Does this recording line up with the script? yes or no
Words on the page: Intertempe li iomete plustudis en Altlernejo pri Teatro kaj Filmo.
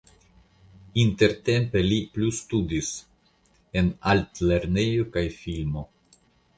no